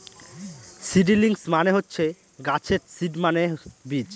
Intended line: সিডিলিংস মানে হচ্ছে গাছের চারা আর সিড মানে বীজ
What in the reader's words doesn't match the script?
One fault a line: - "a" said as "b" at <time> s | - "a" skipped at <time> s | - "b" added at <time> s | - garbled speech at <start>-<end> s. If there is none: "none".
- "চারা আর" skipped at 2.8 s